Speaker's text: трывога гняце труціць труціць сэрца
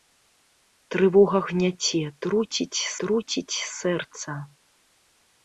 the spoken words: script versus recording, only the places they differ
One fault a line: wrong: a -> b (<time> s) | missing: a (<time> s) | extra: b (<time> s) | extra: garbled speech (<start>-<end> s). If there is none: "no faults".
no faults